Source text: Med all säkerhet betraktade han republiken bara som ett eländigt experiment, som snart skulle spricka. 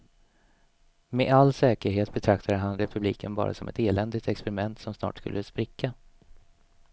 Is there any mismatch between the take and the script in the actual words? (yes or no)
no